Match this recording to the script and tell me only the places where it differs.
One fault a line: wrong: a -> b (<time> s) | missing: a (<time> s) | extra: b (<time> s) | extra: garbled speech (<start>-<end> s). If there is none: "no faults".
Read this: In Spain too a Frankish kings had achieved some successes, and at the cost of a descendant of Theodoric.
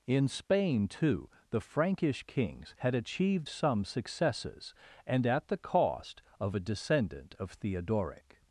wrong: a -> the (1.5 s)